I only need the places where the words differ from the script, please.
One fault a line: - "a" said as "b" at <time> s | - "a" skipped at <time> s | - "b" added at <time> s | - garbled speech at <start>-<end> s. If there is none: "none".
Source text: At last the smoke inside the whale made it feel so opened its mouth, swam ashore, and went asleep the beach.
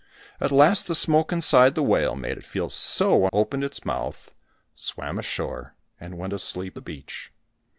none